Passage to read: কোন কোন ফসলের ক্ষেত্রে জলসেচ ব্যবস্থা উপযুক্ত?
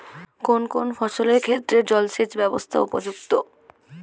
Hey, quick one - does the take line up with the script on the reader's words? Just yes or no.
yes